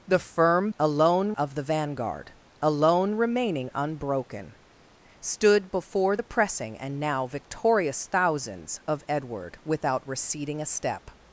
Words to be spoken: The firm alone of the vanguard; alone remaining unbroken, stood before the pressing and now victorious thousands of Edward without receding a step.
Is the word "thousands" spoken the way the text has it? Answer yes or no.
yes